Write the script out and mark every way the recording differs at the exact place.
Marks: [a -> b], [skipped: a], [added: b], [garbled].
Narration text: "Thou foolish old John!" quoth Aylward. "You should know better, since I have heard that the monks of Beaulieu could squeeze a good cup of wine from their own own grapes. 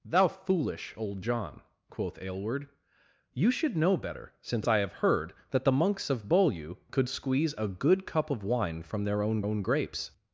"Thou foolish old John!" quoth Aylward. "You should know better, since I have heard that the monks of Beaulieu could squeeze a good cup of wine from their own own grapes.